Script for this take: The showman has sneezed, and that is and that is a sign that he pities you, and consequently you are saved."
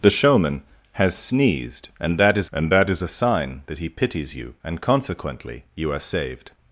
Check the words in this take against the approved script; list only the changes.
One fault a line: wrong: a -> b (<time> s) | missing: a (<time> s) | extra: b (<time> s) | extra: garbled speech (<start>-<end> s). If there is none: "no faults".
no faults